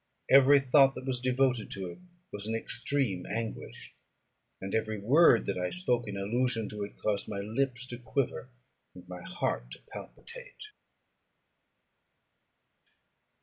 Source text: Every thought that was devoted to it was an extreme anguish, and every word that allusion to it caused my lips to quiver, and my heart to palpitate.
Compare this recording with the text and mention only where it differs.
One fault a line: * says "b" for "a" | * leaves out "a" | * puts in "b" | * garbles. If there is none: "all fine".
* puts in "I spoke in"